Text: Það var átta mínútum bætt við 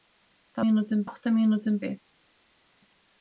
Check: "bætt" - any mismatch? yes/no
yes